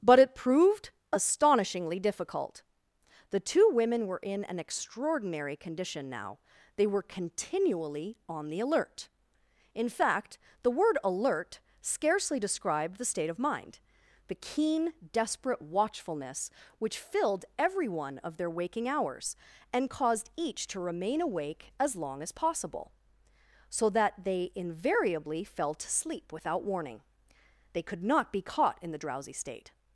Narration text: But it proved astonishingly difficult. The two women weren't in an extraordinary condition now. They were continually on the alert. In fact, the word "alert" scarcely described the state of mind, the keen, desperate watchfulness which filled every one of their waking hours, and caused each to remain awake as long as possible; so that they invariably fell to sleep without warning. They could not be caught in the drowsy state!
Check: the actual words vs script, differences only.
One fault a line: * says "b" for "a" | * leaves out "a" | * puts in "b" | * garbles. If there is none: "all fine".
* says "were" for "weren't"